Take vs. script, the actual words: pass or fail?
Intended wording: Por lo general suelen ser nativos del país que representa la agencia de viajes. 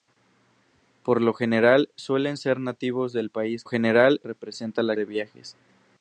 fail